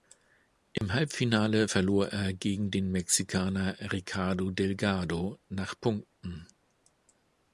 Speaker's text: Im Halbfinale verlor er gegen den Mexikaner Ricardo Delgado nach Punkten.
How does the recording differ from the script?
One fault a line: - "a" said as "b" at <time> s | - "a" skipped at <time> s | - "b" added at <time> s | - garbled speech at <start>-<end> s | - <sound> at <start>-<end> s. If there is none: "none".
- dropout at 0.8-0.8 s